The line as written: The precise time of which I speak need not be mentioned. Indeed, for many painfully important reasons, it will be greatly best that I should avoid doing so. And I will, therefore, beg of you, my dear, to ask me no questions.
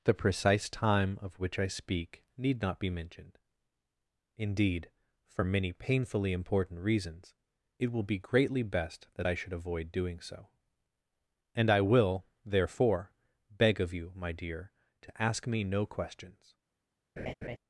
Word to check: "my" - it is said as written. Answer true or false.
true